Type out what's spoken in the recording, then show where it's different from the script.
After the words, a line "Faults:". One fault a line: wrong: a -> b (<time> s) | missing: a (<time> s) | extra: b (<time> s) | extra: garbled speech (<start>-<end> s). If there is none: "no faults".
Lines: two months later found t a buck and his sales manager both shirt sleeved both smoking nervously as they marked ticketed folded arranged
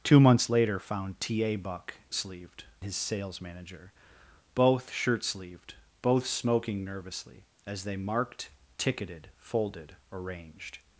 two months later found t a buck sleeved his sales manager both shirt sleeved both smoking nervously as they marked ticketed folded arranged
Faults:
wrong: and -> sleeved (2.1 s)